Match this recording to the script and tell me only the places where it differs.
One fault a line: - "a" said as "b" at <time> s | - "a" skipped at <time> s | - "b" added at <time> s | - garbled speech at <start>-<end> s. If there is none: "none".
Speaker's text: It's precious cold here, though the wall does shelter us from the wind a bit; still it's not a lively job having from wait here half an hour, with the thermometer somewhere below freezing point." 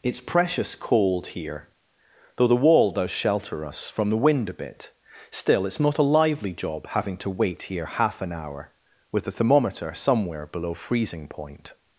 - "from" said as "to" at 7.2 s